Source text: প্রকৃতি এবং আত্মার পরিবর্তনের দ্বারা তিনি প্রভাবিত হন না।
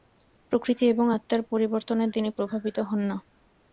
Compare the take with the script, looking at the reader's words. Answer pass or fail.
fail